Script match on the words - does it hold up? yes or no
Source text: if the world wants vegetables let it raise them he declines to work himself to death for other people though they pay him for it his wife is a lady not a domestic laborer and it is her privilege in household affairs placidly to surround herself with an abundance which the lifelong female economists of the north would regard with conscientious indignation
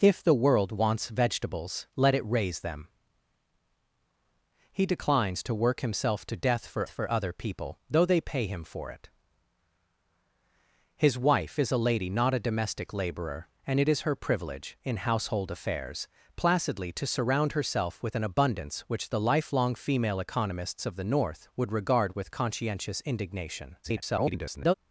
no